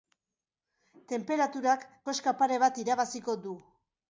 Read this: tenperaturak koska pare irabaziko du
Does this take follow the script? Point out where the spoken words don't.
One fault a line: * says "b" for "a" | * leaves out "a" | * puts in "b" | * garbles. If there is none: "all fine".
* puts in "bat"